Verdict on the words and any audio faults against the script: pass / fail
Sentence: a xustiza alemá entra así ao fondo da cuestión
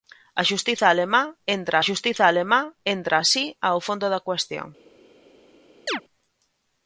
fail